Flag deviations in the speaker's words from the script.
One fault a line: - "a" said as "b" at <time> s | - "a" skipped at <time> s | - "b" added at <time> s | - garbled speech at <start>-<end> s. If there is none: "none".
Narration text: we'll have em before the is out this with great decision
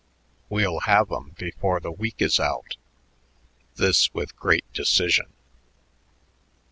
- "week" added at 1.9 s